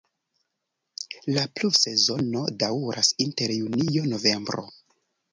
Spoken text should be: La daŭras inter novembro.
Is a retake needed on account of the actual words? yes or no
yes